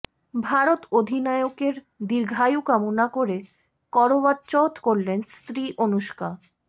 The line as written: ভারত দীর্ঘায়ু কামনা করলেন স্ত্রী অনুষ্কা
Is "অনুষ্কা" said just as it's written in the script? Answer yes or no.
yes